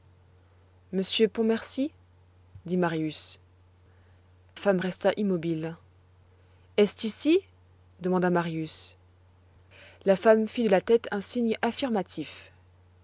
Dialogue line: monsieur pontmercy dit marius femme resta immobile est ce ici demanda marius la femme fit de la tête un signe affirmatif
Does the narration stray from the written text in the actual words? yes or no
no